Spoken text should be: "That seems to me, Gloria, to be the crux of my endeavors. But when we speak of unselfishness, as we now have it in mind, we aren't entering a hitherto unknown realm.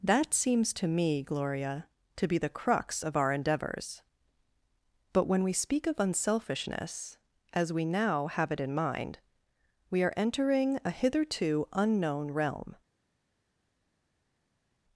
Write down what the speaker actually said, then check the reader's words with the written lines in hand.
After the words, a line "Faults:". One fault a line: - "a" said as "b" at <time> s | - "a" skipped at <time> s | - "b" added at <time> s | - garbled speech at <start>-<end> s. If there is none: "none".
"That seems to me, Gloria, to be the crux of our endeavors. But when we speak of unselfishness, as we now have it in mind, we are entering a hitherto unknown realm.
Faults:
- "my" said as "our" at 3.2 s
- "aren't" said as "are" at 10.0 s